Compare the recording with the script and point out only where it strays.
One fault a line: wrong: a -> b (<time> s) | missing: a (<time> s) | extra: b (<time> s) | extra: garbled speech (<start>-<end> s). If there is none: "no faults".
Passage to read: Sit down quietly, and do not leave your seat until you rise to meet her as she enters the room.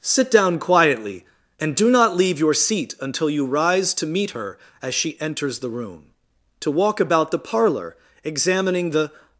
extra: To walk about the parlor examining the (6.6 s)